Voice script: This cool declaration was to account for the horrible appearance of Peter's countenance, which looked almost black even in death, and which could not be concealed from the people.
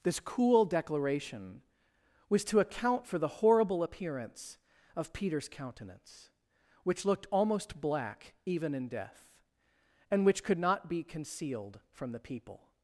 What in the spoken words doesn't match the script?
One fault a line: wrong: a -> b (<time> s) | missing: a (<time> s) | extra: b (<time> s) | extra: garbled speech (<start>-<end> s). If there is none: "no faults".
no faults